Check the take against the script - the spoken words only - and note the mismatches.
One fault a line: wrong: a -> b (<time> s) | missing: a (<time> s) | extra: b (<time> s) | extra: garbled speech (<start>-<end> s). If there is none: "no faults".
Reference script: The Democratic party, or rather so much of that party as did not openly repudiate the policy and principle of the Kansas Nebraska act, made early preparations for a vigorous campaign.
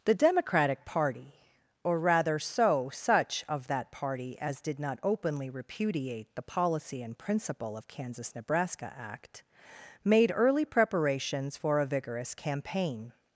wrong: much -> such (2.9 s)
missing: the (7.9 s)